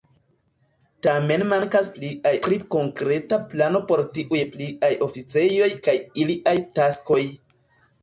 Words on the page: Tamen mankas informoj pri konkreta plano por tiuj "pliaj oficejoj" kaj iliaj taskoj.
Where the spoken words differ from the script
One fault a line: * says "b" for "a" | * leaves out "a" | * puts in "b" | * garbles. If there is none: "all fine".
* says "pliaj" for "informoj"